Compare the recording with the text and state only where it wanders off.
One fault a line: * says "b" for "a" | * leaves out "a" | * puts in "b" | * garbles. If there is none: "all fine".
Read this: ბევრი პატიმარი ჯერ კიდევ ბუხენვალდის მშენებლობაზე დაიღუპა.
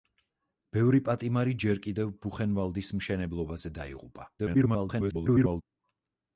* garbles